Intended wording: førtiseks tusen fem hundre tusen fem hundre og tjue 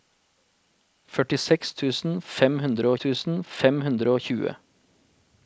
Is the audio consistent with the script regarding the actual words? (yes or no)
yes